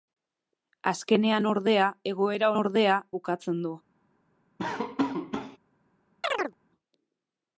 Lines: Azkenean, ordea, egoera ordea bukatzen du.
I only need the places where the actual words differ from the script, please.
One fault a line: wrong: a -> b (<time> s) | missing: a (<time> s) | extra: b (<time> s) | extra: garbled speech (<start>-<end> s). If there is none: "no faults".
no faults